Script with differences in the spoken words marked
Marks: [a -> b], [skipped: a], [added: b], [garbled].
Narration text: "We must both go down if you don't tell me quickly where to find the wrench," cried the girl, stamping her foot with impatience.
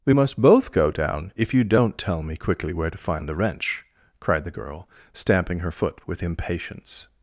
"We must both go down if you don't tell me quickly where to find the wrench," cried the girl, stamping her foot with impatience.